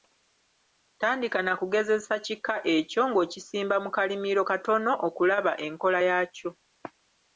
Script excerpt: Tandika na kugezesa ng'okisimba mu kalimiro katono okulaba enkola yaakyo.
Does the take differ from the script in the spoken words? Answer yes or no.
yes